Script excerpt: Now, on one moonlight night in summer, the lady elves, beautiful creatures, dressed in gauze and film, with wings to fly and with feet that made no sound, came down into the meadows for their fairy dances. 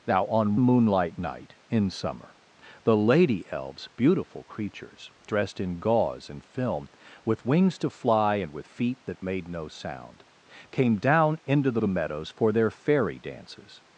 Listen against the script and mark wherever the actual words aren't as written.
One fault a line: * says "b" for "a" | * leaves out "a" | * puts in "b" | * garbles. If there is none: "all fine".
* leaves out "one"
* puts in "the"